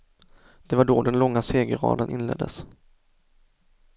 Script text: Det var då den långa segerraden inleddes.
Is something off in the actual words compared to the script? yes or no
no